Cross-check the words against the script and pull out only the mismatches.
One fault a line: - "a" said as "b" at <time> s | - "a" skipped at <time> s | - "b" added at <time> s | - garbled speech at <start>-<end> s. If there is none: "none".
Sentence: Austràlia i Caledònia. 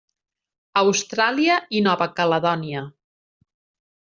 - "Nova" added at 1.9 s